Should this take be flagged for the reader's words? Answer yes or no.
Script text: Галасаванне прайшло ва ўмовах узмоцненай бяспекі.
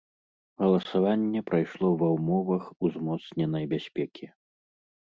no